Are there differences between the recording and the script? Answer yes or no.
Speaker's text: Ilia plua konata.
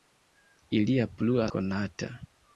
no